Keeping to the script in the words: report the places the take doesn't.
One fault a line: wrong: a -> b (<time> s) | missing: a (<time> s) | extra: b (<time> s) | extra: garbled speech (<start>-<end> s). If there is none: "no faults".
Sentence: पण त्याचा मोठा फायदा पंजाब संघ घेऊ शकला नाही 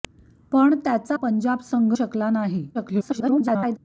missing: मोठा फायदा (1.2 s)
missing: घेऊ (1.9 s)
extra: garbled speech (2.7-3.8 s)